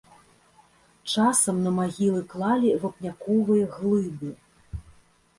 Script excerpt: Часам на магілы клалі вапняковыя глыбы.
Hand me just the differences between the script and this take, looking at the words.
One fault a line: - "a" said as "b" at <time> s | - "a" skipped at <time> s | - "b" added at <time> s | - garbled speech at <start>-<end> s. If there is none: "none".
none